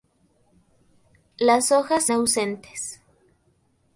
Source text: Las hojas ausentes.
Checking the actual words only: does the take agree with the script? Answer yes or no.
yes